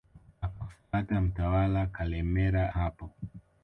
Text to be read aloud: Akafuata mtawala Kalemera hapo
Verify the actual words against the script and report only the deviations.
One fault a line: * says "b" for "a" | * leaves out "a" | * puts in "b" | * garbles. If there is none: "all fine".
all fine